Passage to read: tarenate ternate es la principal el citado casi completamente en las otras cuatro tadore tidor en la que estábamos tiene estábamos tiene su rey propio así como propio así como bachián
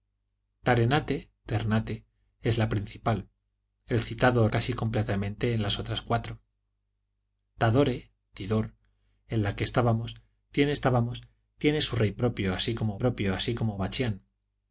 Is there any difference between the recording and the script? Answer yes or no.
no